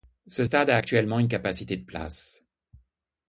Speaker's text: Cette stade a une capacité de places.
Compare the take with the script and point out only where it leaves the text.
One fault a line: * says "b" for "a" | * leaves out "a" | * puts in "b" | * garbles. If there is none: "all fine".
* says "Ce" for "Cette"
* puts in "actuellement"